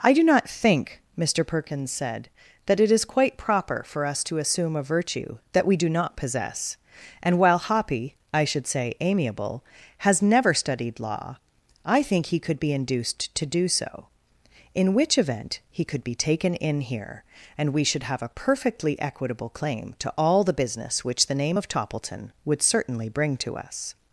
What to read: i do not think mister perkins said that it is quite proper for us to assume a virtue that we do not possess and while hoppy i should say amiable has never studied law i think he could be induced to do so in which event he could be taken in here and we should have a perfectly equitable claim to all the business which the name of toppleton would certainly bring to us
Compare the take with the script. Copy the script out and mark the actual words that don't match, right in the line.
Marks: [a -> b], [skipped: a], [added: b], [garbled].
i do not think mister perkins said that it is quite proper for us to assume a virtue that we do not possess and while hoppy i should say amiable has never studied law i think he could be induced to do so in which event he could be taken in here and we should have a perfectly equitable claim to all the business which the name of toppleton would certainly bring to us